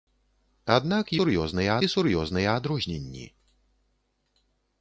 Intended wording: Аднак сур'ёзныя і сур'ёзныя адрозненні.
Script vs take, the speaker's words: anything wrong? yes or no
no